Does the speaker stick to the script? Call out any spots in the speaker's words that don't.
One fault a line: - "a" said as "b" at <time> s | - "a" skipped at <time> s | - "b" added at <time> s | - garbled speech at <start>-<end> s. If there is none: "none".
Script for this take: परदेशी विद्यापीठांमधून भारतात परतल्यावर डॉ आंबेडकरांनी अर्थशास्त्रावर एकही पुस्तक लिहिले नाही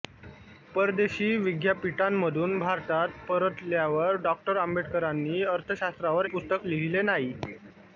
- "एकही" skipped at 6.3 s